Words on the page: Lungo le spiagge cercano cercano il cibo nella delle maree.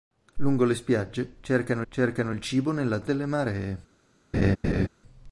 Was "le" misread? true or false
false